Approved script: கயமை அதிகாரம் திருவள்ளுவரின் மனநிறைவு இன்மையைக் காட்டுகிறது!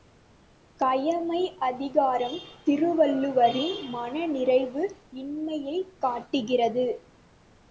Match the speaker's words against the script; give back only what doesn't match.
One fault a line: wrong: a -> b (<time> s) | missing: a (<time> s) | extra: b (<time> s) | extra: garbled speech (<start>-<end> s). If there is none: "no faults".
no faults